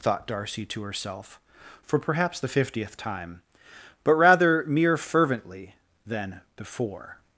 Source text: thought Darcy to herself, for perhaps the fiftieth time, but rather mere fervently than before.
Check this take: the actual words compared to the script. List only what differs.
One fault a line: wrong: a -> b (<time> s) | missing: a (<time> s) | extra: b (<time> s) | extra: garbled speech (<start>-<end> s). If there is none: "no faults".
no faults